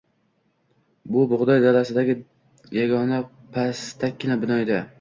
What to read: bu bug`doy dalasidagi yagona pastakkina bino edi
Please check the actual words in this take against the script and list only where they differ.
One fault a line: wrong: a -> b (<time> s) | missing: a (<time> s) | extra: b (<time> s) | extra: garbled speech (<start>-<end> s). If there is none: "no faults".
no faults